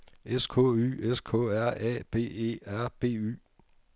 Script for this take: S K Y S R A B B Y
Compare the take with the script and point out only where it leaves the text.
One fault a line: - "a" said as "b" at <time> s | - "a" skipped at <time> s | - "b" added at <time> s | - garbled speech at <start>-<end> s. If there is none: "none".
- "K" added at 1.2 s
- "E R" added at 2.2 s